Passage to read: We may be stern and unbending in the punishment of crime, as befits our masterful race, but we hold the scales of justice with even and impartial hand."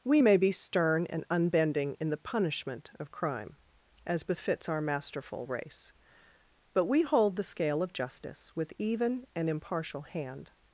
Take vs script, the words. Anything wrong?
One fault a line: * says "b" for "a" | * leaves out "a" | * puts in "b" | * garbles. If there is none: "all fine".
* says "scale" for "scales"